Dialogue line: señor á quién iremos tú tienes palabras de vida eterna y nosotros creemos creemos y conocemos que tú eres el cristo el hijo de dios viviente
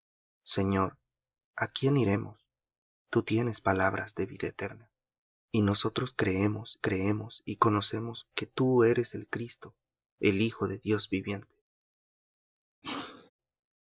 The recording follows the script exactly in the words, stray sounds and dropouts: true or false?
false